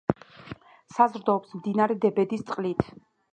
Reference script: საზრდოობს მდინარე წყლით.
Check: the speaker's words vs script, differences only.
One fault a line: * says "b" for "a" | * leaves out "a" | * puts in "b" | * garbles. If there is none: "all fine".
* puts in "დებედის"